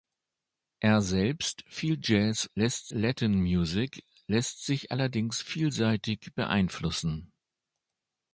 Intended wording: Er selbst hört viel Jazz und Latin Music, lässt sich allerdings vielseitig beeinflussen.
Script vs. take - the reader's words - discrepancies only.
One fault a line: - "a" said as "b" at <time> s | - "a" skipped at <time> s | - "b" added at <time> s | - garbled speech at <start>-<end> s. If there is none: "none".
- "hört" skipped at 1.6 s
- "und" said as "lässt" at 2.5 s